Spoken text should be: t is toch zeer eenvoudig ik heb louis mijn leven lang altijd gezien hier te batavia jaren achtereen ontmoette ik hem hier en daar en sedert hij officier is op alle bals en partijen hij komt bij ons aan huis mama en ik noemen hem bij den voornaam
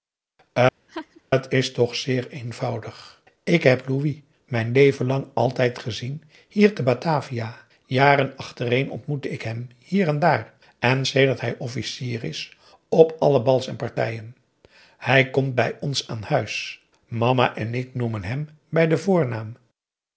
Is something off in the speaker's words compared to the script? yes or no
no